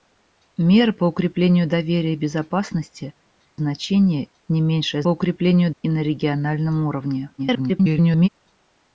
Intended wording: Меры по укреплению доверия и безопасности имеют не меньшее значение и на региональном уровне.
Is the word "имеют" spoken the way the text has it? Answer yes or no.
no